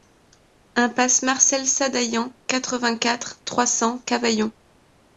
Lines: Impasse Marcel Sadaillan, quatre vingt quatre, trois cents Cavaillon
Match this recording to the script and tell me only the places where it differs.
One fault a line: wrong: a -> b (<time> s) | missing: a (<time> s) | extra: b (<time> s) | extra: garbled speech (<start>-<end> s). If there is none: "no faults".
no faults